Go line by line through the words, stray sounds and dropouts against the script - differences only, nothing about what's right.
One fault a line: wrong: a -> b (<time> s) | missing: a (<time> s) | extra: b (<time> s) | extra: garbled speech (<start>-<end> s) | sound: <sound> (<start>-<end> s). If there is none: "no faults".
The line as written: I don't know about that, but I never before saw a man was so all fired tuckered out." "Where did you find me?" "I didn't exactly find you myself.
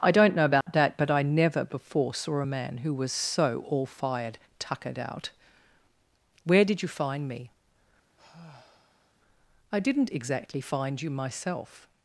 sound: dropout (0.6-0.7 s)
extra: who (2.8 s)
sound: sigh (8.2-9.1 s)